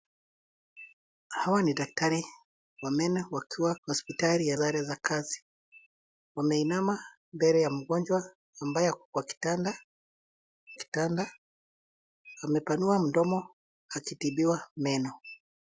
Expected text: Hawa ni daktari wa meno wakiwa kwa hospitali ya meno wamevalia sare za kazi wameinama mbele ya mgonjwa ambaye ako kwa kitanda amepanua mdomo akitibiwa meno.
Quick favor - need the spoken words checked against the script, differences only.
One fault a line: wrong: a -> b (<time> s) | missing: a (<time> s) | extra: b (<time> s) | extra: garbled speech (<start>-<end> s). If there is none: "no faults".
missing: kwa (3.8 s)
missing: meno wamevalia (4.6 s)
extra: kitanda (10.7 s)